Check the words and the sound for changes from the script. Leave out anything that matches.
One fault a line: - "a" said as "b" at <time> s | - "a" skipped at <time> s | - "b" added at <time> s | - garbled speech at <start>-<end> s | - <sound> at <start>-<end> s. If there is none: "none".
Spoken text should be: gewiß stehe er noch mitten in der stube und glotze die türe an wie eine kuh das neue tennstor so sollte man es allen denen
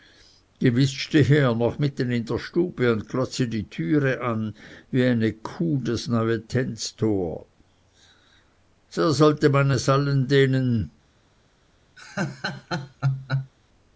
- laugh at 12.0-13.5 s